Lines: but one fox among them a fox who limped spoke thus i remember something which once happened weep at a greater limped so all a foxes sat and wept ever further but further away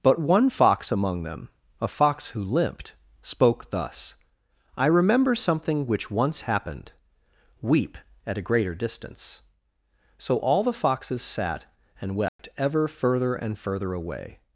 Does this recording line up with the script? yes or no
no